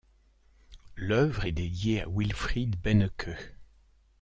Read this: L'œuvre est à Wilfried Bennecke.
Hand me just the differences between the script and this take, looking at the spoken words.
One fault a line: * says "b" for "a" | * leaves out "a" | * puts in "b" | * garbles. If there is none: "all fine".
* puts in "dédiée"